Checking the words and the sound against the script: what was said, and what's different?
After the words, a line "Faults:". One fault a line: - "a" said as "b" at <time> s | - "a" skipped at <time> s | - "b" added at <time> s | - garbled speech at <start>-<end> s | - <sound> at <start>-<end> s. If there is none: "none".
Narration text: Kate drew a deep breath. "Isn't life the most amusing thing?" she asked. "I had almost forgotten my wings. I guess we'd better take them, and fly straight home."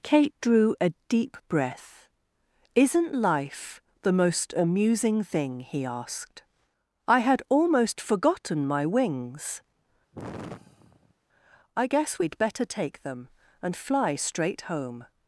Kate drew a deep breath. "Isn't life the most amusing thing?" he asked. "I had almost forgotten my wings. I guess we'd better take them, and fly straight home."
Faults:
- "she" said as "he" at 5.6 s
- sigh at 10.1-11.1 s